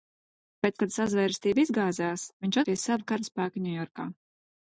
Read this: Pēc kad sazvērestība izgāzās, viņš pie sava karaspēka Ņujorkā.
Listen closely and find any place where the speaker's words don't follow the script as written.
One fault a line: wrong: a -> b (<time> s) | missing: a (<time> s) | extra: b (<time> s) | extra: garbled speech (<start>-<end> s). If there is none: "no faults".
no faults